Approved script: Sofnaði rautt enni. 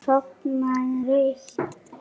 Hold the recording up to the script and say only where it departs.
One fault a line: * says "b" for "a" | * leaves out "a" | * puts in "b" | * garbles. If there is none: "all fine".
all fine